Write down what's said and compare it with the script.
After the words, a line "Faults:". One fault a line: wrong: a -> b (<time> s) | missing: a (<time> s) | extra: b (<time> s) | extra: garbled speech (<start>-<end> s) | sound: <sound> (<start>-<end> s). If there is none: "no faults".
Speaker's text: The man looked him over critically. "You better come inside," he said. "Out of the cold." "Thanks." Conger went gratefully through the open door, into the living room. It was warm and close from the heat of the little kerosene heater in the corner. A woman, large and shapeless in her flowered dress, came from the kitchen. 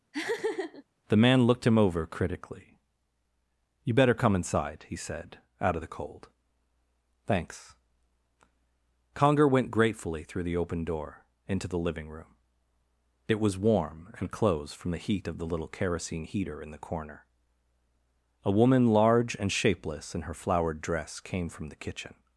The man looked him over critically. "You better come inside," he said. "Out of the cold." "Thanks." Conger went gratefully through the open door, into the living room. It was warm and closed from the heat of the little kerosene heater in the corner. A woman, large and shapeless in her flowered dress, came from the kitchen.
Faults:
sound: laugh (0.1-0.8 s)
wrong: close -> closed (14.3 s)